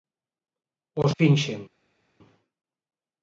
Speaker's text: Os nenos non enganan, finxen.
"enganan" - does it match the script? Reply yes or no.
no